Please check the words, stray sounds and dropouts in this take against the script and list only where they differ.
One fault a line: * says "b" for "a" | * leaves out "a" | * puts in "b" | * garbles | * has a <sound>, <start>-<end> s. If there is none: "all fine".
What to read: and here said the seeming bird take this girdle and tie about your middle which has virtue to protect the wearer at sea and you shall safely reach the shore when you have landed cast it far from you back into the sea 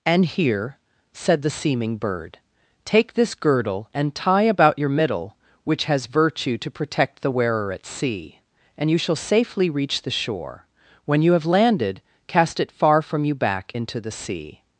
all fine